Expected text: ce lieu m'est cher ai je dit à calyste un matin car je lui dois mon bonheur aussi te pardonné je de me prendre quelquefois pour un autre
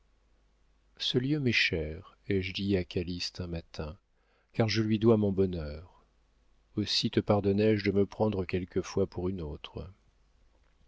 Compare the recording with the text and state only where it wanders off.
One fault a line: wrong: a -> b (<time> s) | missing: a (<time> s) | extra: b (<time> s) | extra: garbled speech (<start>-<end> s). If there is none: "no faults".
wrong: un -> une (9.3 s)